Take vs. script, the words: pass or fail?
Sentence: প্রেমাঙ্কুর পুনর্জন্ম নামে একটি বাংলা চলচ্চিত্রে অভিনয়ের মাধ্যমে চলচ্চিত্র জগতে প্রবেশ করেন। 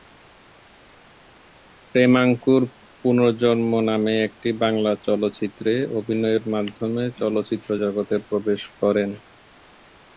pass